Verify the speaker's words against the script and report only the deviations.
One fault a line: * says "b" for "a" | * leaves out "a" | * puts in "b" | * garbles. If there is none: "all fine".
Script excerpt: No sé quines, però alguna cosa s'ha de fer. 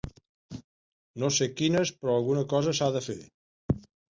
all fine